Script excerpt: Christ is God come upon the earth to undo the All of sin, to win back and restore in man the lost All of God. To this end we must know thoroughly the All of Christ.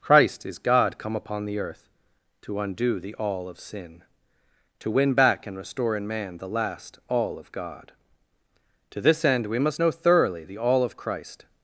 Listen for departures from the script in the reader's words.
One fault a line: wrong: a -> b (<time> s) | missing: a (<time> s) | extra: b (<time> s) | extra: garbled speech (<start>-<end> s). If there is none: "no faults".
wrong: lost -> last (6.5 s)